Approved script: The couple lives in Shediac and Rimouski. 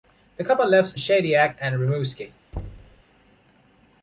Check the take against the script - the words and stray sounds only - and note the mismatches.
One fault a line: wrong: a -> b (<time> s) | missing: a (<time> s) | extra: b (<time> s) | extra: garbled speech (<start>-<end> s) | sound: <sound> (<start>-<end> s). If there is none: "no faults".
missing: in (0.9 s)
sound: thud (2.5-3.0 s)